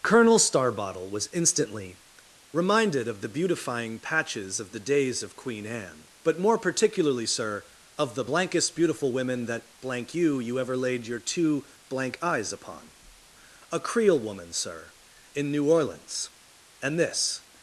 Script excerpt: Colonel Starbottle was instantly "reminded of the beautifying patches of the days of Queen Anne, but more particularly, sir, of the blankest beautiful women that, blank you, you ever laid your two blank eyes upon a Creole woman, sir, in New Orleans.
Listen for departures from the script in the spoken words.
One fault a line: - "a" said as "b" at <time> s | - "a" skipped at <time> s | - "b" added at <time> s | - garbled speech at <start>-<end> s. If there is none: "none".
- "And this" added at 16.8 s